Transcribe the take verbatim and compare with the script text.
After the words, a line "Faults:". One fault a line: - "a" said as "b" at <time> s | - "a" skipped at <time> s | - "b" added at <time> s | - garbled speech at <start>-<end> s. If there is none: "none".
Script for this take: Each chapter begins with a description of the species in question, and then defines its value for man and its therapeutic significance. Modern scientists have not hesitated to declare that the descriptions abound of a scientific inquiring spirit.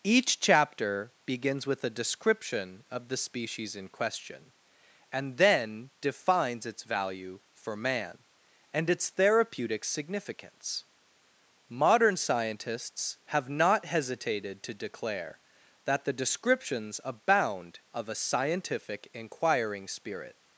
Each chapter begins with a description of the species in question, and then defines its value for man and its therapeutic significance. Modern scientists have not hesitated to declare that the descriptions abound of a scientific inquiring spirit.
Faults:
none